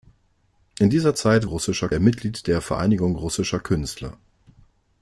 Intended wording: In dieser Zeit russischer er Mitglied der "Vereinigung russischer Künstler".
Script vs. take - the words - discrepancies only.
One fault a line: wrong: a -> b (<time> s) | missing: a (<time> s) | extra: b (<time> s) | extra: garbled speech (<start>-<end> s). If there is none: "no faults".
no faults